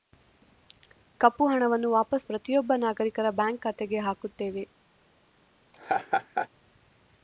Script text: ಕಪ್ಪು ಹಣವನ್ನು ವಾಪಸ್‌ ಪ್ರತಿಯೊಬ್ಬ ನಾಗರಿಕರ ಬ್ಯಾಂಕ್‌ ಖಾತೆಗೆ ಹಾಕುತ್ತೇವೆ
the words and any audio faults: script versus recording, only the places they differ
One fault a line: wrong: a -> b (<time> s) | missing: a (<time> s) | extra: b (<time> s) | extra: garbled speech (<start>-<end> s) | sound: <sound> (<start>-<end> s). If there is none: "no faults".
sound: laugh (5.7-6.5 s)